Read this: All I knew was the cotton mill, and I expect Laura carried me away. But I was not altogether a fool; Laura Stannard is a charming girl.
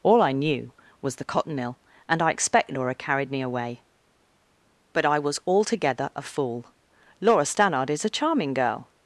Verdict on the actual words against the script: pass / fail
fail